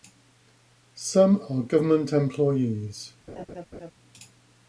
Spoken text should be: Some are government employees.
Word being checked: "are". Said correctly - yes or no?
yes